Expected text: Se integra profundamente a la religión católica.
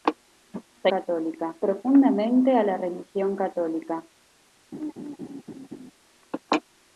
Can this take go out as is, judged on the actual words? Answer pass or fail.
fail